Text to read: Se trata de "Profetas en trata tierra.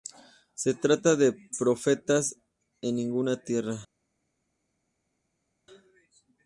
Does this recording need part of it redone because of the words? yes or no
yes